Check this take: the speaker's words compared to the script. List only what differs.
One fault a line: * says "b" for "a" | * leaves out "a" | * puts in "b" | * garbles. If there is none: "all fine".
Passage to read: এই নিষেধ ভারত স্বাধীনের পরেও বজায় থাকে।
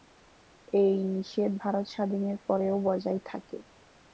all fine